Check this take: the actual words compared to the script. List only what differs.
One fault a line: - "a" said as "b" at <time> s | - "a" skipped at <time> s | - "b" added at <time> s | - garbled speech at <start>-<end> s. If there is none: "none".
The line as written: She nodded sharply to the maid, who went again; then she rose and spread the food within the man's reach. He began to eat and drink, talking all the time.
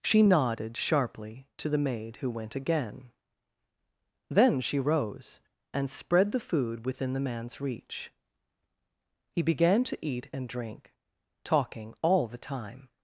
none